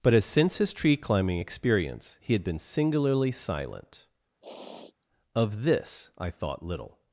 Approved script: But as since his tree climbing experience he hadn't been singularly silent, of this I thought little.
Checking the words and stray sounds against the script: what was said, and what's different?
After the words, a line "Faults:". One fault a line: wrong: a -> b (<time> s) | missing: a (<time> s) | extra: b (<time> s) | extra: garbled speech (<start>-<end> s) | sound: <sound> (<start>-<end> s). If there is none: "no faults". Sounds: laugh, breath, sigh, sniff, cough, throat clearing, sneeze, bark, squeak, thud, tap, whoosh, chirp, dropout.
But as since his tree climbing experience he had been singularly silent, of this I thought little.
Faults:
wrong: hadn't -> had (2.3 s)
sound: sniff (4.4-5.1 s)